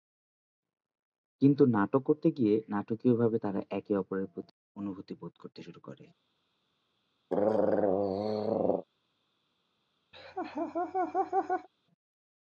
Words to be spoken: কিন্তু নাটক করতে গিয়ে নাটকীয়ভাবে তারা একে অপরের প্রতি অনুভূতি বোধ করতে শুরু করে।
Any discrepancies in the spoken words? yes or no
no